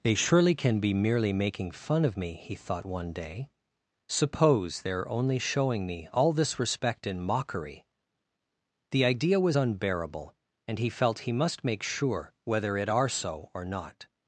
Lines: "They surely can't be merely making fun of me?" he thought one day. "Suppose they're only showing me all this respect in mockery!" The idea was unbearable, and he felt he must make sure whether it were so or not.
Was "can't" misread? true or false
true